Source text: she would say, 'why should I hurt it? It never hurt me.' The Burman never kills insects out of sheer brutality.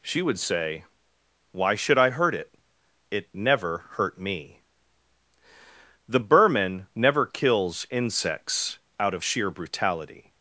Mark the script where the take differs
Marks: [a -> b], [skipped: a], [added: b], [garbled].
she would say, 'why should I hurt it? It never hurt me.' The Burman never kills insects out of sheer brutality.